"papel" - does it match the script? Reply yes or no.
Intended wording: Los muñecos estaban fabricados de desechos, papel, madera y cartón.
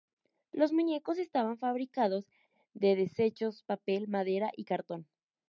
yes